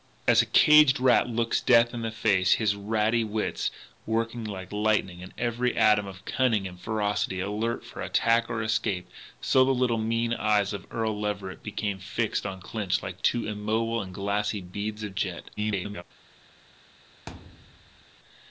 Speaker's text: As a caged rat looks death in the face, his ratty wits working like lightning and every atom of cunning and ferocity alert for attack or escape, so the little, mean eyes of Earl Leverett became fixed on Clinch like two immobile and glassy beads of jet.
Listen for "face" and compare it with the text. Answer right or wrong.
right